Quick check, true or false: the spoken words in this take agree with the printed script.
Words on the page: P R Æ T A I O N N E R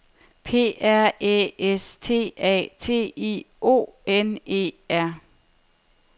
false